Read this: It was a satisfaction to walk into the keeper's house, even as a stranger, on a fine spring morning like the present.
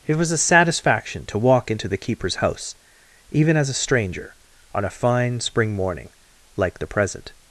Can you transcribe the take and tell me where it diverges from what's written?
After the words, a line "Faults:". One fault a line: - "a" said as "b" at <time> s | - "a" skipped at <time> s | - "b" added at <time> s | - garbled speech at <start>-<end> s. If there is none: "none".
It was a satisfaction to walk into the keeper's house, even as a stranger, on a fine spring morning like the present.
Faults:
none